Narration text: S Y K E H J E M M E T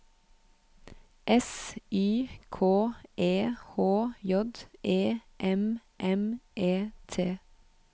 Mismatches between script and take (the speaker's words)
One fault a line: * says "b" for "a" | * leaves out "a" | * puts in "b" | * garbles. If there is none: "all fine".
all fine